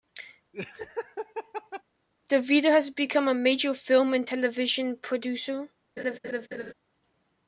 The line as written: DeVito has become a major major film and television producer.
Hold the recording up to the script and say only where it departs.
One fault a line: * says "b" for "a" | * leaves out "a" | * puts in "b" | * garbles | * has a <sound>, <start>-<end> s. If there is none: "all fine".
* has a laugh, 0.5-1.8 s
* leaves out "major"
* has a laugh, 6.0-6.7 s